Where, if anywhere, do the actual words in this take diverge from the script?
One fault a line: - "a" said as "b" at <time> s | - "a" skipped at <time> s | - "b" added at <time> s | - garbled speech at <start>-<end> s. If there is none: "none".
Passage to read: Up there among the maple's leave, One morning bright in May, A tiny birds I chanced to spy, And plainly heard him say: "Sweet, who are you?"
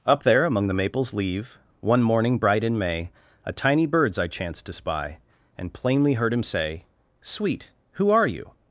none